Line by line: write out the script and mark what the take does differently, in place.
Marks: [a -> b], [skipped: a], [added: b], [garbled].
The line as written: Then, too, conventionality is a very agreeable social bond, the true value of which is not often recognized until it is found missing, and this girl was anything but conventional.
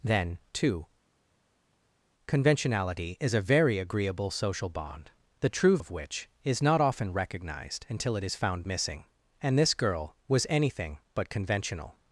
Then, too, conventionality is a very agreeable social bond, the true [skipped: value] of which is not often recognized until it is found missing, and this girl was anything but conventional.